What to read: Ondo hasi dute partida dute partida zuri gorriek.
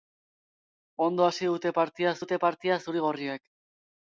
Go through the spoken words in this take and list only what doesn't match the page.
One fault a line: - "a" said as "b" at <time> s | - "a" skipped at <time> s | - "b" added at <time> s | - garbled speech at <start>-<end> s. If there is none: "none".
none